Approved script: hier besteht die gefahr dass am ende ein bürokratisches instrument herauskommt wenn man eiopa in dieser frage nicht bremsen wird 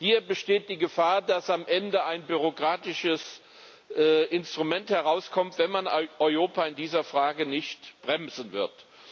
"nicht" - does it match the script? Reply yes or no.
yes